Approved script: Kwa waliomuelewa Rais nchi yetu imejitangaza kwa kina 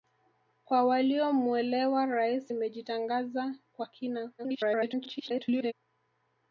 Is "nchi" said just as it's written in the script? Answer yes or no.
no